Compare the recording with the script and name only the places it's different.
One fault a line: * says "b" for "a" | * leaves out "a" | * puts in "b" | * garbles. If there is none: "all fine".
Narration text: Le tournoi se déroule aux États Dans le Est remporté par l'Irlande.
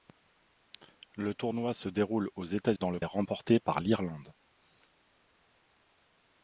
all fine